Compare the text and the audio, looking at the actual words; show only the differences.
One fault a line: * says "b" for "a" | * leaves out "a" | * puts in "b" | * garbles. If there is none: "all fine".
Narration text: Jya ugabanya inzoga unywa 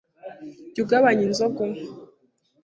all fine